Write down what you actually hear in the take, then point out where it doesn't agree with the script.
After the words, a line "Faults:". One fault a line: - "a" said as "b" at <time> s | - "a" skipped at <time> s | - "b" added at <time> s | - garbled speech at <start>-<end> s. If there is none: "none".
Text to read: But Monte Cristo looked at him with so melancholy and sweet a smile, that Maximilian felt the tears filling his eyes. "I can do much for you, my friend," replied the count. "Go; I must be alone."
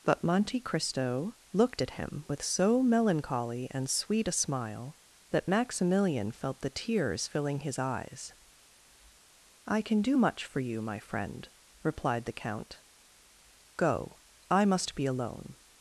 But Monte Cristo looked at him with so melancholy and sweet a smile, that Maximilian felt the tears filling his eyes. "I can do much for you, my friend," replied the count. "Go; I must be alone."
Faults:
none